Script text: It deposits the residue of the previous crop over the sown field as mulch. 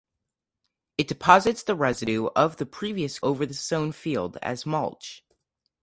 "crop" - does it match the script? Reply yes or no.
no